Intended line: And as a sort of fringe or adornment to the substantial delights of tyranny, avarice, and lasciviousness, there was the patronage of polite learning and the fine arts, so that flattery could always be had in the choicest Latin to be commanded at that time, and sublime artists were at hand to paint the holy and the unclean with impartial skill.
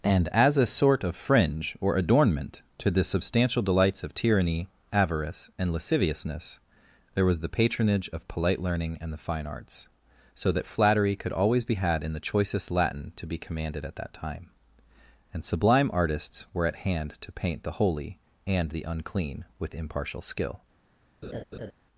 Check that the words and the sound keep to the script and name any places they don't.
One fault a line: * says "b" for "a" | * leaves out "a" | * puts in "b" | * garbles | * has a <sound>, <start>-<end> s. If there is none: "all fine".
* has a laugh, 21.2-21.7 s